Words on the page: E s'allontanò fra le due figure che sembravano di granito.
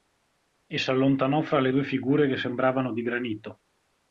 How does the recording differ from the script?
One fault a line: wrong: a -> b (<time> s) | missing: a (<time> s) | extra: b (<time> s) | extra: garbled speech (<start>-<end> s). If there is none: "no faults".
no faults